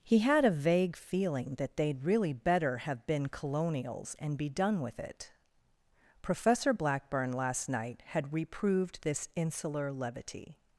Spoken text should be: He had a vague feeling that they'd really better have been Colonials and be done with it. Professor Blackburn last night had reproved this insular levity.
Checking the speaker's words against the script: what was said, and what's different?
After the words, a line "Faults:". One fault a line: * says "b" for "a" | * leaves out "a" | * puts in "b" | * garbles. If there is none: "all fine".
He had a vague feeling that they'd really better have been Colonials and be done with it. Professor Blackburn last night had reproved this insular levity.
Faults:
all fine